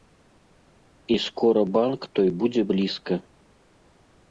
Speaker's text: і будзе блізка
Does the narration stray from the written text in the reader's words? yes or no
yes